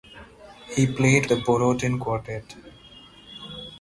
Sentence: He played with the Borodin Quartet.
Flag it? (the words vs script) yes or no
yes